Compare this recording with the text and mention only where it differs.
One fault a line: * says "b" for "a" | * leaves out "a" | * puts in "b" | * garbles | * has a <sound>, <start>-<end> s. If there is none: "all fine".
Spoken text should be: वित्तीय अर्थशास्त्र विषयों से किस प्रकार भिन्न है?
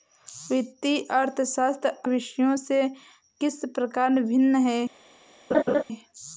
* has a laugh, 5.5-5.8 s